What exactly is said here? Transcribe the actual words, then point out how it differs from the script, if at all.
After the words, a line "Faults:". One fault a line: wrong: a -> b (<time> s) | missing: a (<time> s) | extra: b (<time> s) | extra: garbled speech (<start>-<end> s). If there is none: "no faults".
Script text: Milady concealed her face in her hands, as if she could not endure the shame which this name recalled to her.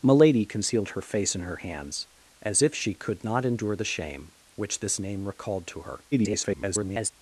Milady concealed her face in her hands, as if she could not endure the shame which this name recalled to her. [garbled]
Faults:
extra: garbled speech (6.1-7.1 s)